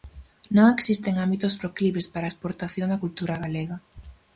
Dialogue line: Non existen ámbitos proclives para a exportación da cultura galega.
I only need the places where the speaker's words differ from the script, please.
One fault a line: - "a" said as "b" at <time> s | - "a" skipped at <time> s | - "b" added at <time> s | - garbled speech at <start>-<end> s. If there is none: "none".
none